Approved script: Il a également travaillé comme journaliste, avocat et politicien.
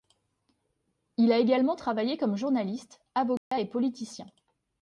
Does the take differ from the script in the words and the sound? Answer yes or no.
yes